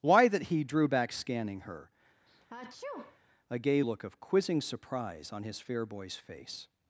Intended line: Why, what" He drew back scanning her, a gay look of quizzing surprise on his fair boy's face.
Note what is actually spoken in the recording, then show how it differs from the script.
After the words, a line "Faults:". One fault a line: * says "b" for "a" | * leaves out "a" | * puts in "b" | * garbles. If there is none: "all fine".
Why, that" He drew back scanning her, a gay look of quizzing surprise on his fair boy's face.
Faults:
* says "that" for "what"